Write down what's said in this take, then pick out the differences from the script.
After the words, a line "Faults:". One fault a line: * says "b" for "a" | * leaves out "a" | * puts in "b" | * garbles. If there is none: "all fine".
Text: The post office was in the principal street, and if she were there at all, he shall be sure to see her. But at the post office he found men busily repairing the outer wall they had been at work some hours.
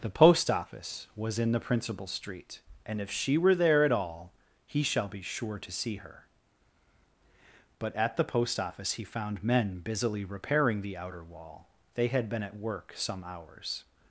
The post office was in the principal street, and if she were there at all, he shall be sure to see her. But at the post office he found men busily repairing the outer wall they had been at work some hours.
Faults:
all fine